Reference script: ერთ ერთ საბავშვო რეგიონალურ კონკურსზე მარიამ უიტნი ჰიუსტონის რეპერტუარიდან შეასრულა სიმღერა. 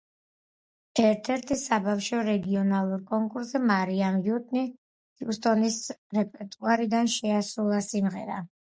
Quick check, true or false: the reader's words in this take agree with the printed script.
true